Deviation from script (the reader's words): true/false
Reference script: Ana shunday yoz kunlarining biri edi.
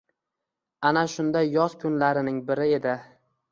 false